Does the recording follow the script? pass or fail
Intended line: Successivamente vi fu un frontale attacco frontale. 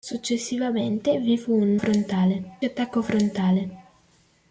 pass